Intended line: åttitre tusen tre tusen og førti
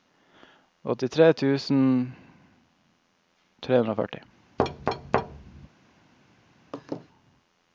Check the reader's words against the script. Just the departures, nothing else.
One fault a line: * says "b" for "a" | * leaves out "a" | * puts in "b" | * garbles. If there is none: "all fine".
* says "hundre" for "tusen"